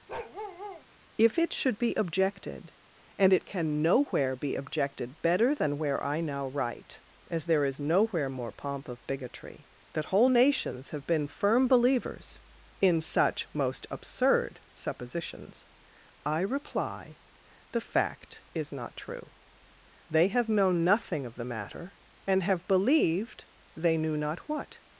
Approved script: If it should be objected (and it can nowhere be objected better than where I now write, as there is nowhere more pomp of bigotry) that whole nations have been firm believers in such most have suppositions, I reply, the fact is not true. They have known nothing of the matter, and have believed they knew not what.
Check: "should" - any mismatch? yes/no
no